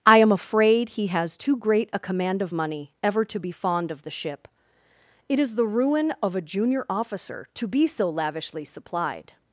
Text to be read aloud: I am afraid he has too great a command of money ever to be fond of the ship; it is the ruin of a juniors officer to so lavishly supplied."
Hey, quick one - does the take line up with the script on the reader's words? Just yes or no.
no